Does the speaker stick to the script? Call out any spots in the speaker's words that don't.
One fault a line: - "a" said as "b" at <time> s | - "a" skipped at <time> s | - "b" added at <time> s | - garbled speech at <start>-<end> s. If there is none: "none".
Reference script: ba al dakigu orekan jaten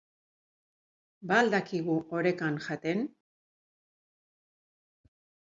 none